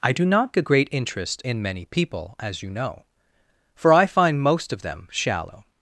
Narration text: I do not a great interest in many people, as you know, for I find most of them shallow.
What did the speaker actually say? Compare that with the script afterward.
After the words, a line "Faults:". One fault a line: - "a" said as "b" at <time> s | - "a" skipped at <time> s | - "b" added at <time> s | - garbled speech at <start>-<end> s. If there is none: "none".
I do not a great interest in many people, as you know, for I find most of them shallow.
Faults:
none